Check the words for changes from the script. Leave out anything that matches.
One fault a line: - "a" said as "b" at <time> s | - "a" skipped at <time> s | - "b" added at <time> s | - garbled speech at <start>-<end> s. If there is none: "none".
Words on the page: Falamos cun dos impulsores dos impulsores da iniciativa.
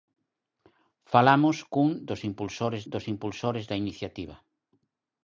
none